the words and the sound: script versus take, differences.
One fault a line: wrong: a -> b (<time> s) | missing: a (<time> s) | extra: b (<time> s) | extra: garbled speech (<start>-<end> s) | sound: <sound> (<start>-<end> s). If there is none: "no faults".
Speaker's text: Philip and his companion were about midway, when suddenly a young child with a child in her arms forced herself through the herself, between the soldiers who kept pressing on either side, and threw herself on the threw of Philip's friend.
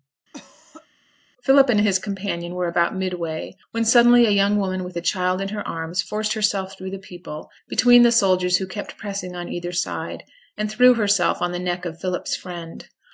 sound: cough (0.3-0.9 s)
wrong: child -> woman (4.6 s)
wrong: herself -> people (7.0 s)
wrong: threw -> neck (11.6 s)